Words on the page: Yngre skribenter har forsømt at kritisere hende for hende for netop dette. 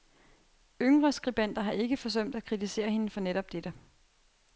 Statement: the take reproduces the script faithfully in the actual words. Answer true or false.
false